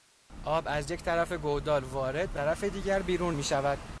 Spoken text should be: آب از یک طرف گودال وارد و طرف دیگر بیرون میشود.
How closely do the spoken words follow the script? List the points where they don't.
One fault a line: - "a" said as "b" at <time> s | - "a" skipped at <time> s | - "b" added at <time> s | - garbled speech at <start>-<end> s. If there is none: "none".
none